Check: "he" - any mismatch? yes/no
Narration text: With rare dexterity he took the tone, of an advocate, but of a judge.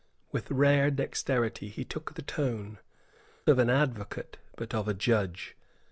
no